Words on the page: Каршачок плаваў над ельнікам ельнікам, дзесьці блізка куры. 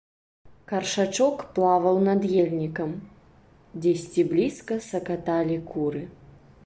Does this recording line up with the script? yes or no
no